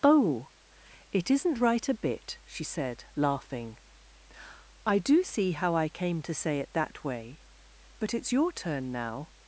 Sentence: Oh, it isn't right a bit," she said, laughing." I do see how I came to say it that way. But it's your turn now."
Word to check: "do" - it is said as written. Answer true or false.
true